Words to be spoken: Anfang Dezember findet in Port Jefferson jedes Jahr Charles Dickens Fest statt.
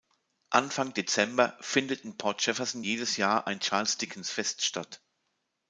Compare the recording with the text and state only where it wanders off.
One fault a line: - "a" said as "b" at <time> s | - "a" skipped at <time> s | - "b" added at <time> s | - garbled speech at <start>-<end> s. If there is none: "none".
- "ein" added at 3.5 s